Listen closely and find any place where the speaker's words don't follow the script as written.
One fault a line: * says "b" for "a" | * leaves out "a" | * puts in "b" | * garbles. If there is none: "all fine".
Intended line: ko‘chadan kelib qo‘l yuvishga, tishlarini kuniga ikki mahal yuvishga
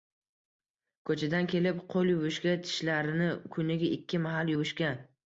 all fine